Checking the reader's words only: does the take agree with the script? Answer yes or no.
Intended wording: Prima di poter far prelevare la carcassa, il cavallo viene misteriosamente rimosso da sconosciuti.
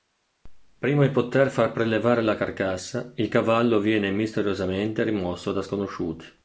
yes